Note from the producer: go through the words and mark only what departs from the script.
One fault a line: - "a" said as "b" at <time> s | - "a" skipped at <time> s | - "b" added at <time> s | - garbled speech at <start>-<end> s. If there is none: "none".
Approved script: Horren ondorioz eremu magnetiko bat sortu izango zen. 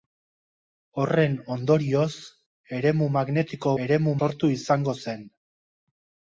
- "bat" said as "eremu" at 3.8 s